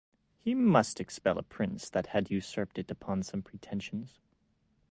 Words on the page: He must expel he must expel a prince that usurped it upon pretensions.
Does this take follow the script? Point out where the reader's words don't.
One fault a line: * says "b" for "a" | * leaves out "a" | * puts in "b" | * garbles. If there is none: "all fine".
* leaves out "he must expel"
* puts in "had"
* puts in "some"